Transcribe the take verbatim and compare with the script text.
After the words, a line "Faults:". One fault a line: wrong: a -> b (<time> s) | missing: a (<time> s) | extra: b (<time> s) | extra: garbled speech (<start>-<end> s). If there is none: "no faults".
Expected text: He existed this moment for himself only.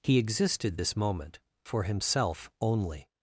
He existed this moment for himself only.
Faults:
no faults